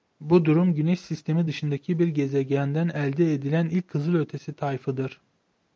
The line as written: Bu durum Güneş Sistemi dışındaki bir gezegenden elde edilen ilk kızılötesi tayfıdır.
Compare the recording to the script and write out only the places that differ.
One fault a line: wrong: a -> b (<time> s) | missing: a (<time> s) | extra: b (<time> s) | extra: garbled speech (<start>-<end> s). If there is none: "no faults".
no faults